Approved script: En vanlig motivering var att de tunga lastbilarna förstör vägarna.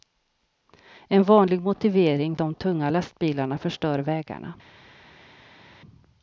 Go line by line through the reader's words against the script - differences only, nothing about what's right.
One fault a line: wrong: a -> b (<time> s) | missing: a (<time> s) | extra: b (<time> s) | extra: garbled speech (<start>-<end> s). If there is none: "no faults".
missing: var att (2.4 s)